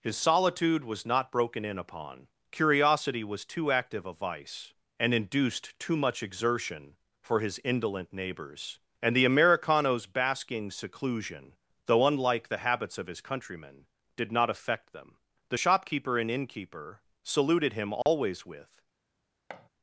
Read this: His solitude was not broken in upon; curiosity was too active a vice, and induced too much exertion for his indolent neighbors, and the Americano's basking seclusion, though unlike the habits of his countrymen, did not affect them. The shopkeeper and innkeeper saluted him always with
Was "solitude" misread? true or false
false